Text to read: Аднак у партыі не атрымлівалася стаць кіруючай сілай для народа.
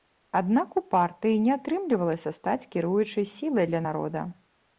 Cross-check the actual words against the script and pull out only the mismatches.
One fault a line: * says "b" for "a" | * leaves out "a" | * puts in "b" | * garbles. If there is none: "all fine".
all fine